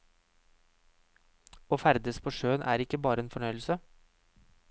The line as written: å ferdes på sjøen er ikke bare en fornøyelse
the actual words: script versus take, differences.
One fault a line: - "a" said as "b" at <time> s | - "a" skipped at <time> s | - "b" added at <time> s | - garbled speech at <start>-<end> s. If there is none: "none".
none